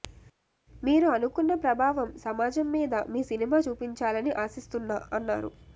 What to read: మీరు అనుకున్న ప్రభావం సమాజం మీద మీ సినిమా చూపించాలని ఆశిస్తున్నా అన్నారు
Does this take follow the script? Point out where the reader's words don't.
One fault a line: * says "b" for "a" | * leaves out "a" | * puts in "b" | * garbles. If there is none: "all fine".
all fine